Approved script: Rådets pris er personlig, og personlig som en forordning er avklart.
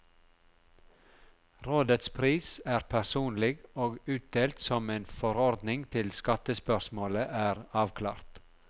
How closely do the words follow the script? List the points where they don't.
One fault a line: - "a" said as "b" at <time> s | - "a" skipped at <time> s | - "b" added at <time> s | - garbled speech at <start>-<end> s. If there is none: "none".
- "personlig" said as "utdelt" at 4.1 s
- "til skattespørsmålet" added at 5.9 s